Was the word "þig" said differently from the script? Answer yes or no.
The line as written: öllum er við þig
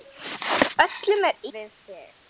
no